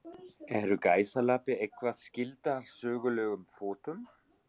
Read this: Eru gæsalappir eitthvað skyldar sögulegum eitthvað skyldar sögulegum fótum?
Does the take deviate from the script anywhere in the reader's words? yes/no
yes